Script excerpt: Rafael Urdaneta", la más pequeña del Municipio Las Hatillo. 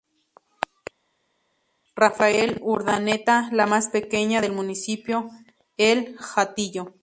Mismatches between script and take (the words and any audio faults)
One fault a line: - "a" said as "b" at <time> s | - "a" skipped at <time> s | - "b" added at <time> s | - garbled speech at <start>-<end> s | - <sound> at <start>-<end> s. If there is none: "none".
- "Las" said as "El" at 5.8 s